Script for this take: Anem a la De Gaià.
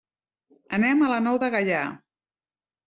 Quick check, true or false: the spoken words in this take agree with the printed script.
false